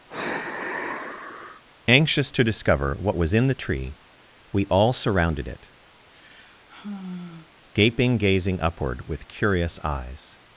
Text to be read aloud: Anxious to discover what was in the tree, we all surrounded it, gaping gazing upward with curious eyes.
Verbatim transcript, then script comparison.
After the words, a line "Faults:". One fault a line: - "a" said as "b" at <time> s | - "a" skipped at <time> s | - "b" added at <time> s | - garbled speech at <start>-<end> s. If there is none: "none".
Anxious to discover what was in the tree, we all surrounded it, gaping gazing upward with curious eyes.
Faults:
none